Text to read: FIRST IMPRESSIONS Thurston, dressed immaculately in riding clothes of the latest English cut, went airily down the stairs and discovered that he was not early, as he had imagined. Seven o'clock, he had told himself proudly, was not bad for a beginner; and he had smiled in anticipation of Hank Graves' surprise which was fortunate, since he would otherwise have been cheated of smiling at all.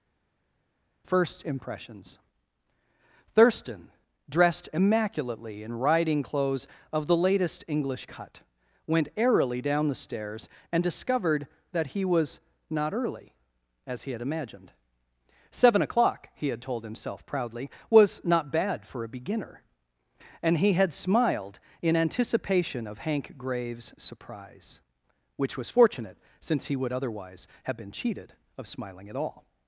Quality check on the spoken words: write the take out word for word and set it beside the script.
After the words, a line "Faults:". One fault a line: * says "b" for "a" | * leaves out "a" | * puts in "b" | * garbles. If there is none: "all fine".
FIRST IMPRESSIONS Thurston, dressed immaculately in riding clothes of the latest English cut, went airily down the stairs and discovered that he was not early, as he had imagined. Seven o'clock, he had told himself proudly, was not bad for a beginner; and he had smiled in anticipation of Hank Graves' surprise which was fortunate, since he would otherwise have been cheated of smiling at all.
Faults:
all fine